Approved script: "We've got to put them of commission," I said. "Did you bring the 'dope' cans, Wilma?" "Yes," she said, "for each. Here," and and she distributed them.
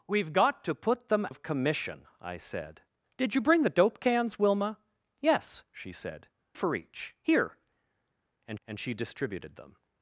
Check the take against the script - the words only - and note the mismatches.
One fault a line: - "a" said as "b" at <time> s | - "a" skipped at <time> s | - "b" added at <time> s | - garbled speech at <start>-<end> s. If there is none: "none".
none